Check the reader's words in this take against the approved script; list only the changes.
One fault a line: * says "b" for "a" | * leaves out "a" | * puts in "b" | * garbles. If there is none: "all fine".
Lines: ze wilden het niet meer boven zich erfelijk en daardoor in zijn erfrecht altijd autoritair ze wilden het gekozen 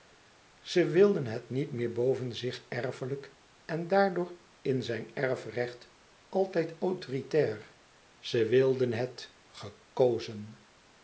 all fine